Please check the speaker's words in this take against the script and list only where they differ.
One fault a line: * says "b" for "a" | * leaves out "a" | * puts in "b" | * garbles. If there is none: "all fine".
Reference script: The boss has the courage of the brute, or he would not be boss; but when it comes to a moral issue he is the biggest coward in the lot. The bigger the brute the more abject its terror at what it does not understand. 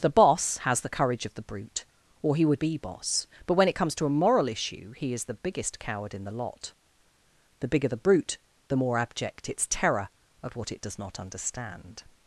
* leaves out "not"